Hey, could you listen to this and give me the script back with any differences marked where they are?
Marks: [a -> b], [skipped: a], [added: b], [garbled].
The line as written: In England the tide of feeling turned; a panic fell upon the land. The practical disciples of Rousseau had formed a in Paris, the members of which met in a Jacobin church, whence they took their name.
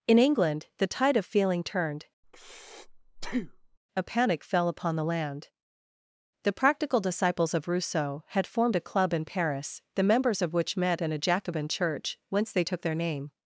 In England the tide of feeling turned; a panic fell upon the land. The practical disciples of Rousseau had formed a [added: club] in Paris, the members of which met in a Jacobin church, whence they took their name.